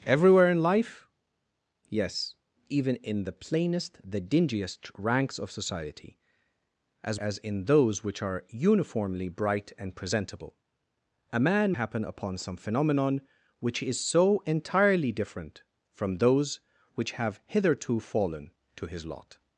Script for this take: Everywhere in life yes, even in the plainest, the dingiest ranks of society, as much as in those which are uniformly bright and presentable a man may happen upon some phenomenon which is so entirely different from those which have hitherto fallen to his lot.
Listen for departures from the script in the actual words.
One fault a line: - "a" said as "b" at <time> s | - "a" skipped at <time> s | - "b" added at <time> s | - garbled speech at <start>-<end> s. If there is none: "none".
- "much" skipped at 7.2 s
- "may" skipped at 11.7 s